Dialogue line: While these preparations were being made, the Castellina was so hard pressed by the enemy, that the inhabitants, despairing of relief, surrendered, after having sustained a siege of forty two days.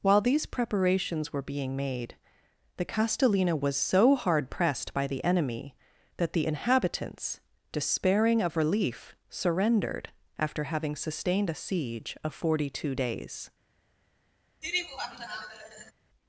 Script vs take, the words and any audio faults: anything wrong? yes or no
yes